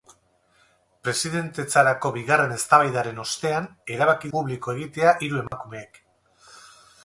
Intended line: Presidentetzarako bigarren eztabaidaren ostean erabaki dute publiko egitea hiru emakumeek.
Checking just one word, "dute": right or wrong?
wrong